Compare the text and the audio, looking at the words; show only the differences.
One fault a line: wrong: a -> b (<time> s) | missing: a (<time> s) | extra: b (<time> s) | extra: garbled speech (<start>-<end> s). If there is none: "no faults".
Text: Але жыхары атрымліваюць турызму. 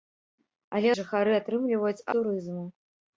no faults